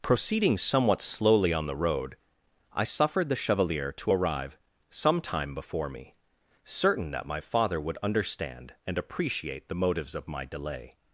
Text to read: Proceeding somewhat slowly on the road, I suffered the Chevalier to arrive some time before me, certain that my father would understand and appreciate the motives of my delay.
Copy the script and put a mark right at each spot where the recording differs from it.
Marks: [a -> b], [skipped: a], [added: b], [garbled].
Proceeding somewhat slowly on the road, I suffered the Chevalier to arrive some time before me, certain that my father would understand and appreciate the motives of my delay.